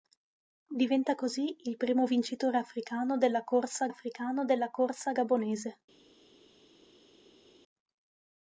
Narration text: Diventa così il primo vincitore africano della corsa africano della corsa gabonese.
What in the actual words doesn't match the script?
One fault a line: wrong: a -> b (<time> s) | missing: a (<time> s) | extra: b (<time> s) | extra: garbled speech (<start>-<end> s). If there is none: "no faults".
no faults